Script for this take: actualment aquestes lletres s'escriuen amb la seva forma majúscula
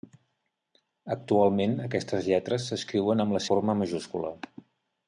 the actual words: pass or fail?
fail